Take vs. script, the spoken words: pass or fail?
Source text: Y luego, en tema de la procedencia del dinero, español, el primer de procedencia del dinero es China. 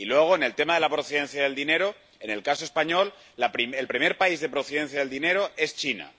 fail